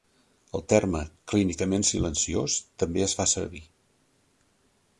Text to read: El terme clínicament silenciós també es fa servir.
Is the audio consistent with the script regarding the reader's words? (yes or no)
yes